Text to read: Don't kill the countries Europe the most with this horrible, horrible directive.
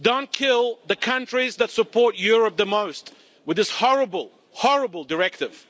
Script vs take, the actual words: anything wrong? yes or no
yes